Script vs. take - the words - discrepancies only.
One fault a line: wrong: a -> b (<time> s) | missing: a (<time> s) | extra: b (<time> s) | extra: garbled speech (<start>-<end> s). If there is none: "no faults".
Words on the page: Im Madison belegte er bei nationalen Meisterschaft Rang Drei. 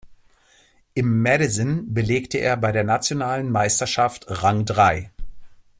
extra: der (2.7 s)